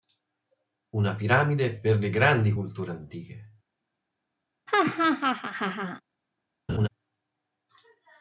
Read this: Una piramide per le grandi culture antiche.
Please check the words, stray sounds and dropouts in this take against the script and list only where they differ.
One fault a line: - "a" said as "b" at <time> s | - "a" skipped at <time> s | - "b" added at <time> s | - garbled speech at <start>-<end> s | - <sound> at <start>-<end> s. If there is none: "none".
- laugh at 4.7-6.0 s
- laugh at 6.7-6.9 s